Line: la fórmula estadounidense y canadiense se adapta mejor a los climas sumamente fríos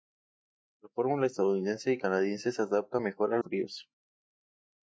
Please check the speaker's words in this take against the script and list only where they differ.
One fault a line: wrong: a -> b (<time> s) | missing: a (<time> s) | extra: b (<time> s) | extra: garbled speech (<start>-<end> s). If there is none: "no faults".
missing: los climas sumamente (3.4 s)